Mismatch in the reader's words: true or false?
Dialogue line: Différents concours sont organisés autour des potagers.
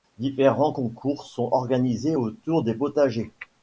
false